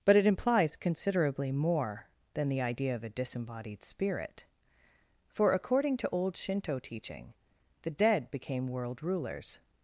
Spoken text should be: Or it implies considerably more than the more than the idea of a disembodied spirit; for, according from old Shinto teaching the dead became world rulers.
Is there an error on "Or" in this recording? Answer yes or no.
yes